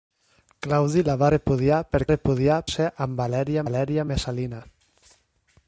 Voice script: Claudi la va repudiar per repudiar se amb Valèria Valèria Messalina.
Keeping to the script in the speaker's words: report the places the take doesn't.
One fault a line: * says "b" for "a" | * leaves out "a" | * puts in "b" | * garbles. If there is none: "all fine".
all fine